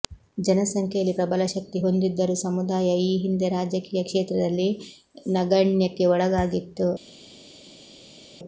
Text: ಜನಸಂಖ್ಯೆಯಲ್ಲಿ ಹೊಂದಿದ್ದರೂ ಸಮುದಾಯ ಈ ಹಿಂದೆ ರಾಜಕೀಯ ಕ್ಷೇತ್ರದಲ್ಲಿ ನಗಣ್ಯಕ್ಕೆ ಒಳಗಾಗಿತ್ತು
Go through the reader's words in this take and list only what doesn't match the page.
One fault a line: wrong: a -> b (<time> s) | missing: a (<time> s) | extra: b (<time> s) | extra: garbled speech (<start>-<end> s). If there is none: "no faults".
extra: ಪ್ರಬಲ ಶಕ್ತಿ (1.2 s)